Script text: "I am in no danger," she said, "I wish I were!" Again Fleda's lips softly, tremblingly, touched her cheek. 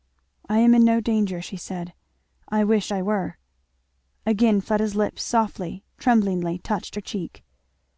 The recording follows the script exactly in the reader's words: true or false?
true